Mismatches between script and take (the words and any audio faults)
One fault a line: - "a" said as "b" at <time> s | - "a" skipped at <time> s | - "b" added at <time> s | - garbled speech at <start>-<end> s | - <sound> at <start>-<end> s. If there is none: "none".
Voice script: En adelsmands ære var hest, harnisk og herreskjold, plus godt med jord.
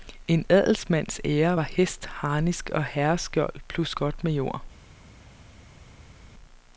none